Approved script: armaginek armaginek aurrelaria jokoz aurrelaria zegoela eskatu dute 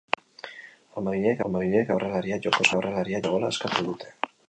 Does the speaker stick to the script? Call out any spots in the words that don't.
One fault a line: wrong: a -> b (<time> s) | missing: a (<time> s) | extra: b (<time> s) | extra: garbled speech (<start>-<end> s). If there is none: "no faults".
no faults